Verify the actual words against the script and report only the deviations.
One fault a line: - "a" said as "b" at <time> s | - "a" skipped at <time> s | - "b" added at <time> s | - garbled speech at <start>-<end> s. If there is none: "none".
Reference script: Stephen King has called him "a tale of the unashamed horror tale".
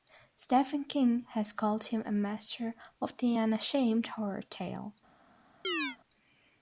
- "tale" said as "master" at 2.1 s